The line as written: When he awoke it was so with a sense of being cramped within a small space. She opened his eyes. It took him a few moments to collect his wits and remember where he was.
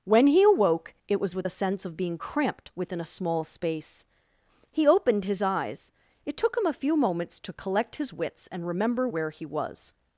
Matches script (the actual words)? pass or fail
fail